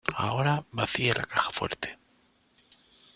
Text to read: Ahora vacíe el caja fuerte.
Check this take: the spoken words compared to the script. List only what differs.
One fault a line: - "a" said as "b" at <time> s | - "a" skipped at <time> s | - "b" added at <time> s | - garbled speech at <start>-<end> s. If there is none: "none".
- "el" said as "la" at 1.1 s